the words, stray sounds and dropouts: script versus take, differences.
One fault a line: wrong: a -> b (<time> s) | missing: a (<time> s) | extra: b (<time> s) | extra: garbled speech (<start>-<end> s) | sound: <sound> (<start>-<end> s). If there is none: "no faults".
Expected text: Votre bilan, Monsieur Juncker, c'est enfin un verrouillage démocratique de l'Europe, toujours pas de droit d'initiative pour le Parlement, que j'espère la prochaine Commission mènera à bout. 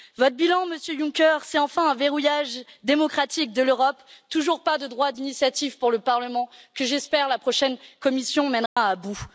sound: dropout (8.7-8.8 s)